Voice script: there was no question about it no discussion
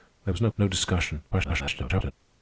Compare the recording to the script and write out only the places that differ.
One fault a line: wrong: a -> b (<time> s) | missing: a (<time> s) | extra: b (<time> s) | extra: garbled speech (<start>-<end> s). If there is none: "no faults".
missing: question about it (0.5 s)
extra: garbled speech (1.3-2.1 s)